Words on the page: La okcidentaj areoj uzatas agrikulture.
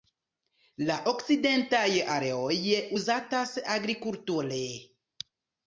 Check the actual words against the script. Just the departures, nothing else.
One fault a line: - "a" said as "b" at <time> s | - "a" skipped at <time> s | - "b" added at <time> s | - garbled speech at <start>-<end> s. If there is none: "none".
none